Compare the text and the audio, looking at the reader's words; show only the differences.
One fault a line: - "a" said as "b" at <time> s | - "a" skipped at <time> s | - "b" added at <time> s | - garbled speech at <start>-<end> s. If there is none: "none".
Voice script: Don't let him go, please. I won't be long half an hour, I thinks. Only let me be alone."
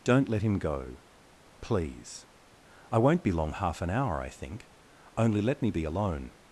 - "thinks" said as "think" at 4.3 s